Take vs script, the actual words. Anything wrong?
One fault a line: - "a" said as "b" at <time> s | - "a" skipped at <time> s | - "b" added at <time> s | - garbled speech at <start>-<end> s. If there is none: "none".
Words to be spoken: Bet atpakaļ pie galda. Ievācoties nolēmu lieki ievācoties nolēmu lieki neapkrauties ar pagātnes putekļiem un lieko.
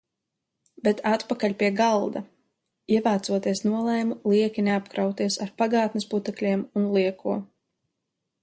- "ievācoties nolēmu lieki" skipped at 4.7 s